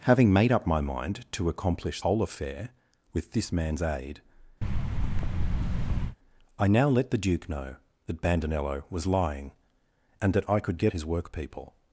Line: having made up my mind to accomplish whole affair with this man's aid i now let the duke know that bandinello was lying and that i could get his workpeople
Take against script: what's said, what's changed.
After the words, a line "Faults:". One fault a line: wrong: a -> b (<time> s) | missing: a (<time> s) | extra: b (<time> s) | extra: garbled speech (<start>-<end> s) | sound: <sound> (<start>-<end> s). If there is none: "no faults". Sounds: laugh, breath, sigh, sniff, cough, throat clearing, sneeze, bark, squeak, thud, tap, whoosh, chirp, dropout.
having made up my mind to accomplish whole affair with this man's aid i now let the duke know that bandinello was lying and that i could get his workpeople
Faults:
sound: thud (4.6-6.2 s)